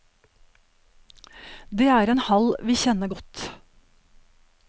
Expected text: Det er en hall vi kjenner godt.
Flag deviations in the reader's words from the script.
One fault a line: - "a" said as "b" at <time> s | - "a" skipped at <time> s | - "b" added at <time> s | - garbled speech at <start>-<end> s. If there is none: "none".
none